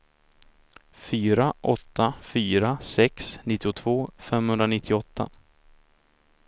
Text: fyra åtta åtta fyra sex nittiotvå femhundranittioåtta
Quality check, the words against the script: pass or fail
fail